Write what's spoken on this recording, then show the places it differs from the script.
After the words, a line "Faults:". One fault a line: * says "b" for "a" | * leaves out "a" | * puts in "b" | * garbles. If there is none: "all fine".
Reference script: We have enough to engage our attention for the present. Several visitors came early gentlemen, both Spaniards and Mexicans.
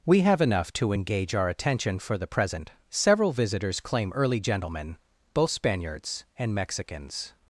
We have enough to engage our attention for the present. Several visitors claim early gentlemen, both Spaniards and Mexicans.
Faults:
* says "claim" for "came"